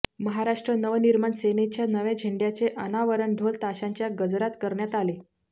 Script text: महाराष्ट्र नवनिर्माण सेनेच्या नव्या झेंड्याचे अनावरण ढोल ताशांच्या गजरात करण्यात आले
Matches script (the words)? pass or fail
pass